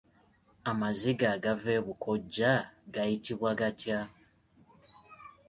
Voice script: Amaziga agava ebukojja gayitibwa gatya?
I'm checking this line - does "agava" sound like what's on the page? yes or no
yes